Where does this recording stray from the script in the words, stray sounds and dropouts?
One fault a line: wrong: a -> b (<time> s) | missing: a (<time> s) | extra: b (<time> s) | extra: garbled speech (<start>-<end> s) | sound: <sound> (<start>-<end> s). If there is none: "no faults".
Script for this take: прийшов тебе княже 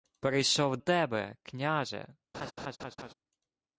sound: laugh (2.3-3.1 s)